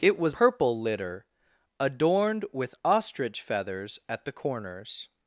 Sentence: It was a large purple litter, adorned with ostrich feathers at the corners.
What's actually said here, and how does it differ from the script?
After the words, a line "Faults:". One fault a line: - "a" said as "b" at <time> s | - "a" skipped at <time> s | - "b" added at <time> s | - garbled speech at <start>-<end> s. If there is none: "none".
It was purple litter, adorned with ostrich feathers at the corners.
Faults:
- "a large" skipped at 0.3 s